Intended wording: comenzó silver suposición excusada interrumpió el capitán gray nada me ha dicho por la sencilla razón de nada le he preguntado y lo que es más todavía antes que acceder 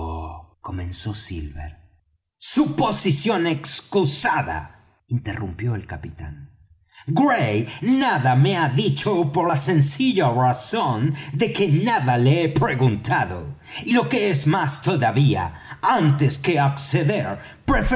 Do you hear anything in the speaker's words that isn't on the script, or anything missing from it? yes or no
yes